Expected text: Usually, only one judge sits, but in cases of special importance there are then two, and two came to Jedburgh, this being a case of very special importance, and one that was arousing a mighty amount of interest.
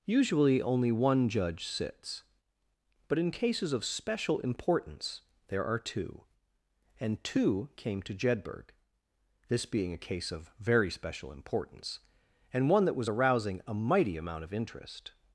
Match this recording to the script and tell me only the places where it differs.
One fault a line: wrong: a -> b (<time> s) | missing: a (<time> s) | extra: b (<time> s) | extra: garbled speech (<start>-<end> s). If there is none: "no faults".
missing: then (5.8 s)